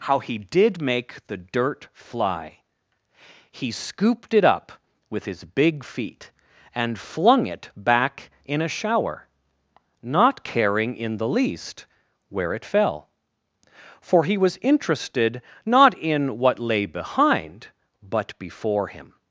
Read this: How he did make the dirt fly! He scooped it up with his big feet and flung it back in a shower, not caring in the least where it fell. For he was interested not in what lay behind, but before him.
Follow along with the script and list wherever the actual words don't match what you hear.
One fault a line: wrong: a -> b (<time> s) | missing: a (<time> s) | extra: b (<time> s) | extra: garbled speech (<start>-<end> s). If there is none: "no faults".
no faults